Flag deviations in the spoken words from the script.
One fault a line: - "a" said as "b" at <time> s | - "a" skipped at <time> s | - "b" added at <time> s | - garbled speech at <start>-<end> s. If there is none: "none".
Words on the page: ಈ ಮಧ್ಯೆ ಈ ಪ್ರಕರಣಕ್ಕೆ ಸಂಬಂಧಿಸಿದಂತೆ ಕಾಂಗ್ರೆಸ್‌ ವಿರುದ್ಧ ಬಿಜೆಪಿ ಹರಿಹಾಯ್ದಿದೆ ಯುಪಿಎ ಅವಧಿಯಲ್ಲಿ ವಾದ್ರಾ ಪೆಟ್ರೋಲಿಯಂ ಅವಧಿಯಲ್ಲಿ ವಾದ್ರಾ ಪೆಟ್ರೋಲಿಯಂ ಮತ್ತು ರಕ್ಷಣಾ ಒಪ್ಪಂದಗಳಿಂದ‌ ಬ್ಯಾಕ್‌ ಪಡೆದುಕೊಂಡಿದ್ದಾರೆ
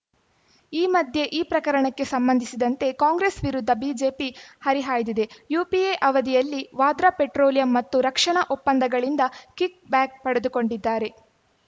- "ಅವಧಿಯಲ್ಲಿ ವಾದ್ರಾ ಪೆಟ್ರೋಲಿಯಂ" skipped at 7.7 s
- "ಕಿಕ್" added at 9.6 s